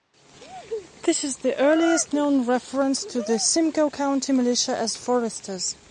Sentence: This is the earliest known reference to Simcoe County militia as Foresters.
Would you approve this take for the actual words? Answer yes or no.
no